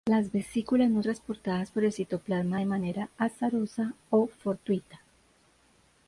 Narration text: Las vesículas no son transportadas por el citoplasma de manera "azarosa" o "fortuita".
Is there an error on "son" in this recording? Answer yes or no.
yes